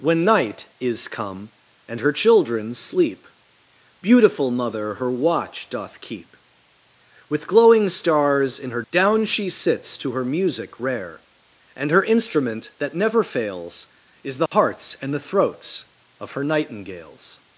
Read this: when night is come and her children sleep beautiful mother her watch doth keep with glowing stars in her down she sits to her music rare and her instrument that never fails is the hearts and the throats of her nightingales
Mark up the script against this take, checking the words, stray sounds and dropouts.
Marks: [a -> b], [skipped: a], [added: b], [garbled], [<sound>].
when night is come and her children sleep beautiful mother her watch doth keep with glowing stars in her down she sits to her music rare and her instrument that never fails is the [dropout] hearts and the throats of her nightingales